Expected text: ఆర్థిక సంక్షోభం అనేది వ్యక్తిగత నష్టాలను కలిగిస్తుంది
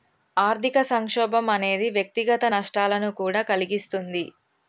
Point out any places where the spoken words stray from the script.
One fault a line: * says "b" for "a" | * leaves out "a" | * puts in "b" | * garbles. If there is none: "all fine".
* puts in "కూడా"